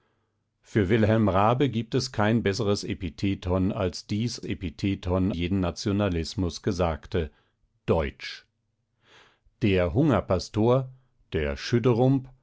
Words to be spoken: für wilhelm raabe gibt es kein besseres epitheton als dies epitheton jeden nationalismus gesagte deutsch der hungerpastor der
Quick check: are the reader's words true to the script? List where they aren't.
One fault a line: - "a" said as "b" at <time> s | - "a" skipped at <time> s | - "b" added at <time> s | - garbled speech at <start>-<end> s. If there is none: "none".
none